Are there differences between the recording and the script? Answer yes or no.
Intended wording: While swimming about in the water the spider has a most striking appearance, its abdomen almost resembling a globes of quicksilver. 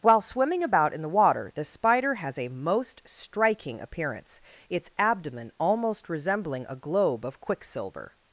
yes